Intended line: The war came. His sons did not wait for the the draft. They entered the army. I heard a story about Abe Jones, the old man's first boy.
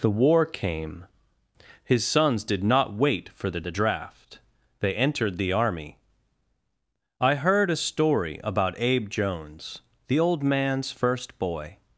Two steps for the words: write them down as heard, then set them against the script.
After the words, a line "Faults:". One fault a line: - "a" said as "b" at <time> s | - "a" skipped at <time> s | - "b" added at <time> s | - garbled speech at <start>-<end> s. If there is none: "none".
The war came. His sons did not wait for the the draft. They entered the army. I heard a story about Abe Jones, the old man's first boy.
Faults:
none